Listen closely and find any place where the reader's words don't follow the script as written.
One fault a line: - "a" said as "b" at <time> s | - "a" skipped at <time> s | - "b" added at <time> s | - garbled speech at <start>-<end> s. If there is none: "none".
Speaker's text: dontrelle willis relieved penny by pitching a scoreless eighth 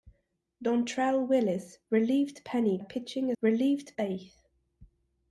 - "by" skipped at 2.8 s
- "scoreless" said as "relieved" at 3.4 s